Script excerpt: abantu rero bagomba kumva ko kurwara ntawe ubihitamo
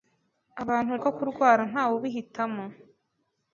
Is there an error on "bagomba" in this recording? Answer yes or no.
yes